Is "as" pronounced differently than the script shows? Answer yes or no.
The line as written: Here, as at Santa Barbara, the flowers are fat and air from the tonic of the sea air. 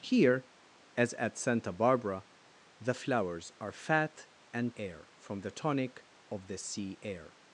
no